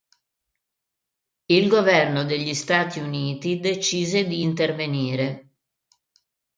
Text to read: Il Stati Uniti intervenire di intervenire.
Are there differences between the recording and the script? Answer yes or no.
yes